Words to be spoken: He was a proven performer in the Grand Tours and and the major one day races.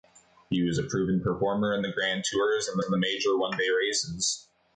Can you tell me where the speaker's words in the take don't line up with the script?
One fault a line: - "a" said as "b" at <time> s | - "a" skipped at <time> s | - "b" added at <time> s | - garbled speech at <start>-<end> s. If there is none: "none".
none